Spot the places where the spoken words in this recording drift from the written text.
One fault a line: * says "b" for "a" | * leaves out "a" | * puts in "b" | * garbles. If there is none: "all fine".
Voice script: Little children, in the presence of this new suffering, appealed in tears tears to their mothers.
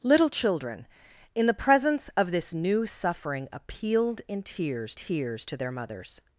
all fine